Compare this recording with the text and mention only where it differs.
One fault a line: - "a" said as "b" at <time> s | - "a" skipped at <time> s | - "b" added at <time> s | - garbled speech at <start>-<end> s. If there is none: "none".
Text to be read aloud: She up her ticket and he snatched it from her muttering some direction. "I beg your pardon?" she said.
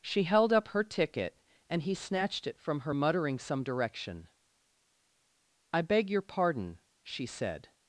- "held" added at 0.2 s